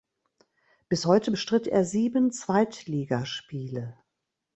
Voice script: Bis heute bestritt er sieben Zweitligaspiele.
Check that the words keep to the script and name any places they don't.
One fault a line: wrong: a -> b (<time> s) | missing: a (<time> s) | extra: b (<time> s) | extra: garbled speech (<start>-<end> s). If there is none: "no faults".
no faults